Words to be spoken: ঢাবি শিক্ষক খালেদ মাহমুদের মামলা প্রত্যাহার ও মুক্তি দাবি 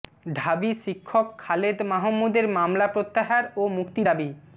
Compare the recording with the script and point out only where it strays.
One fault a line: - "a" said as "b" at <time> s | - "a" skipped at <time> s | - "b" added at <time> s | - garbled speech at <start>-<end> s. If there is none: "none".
none